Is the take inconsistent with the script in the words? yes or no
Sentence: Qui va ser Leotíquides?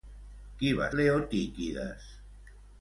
yes